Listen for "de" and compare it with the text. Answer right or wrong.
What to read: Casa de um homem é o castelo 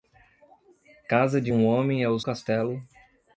right